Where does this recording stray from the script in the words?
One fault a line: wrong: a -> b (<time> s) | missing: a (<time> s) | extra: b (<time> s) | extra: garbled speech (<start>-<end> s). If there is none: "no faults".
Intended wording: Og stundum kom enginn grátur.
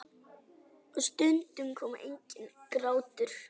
no faults